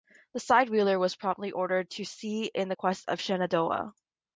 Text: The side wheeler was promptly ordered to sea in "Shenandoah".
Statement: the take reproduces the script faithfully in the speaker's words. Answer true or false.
false